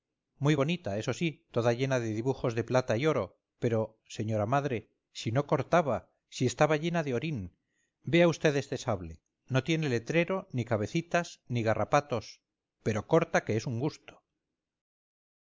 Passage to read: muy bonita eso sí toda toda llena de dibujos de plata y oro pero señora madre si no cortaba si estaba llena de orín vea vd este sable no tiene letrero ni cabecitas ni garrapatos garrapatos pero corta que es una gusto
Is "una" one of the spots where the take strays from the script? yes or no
yes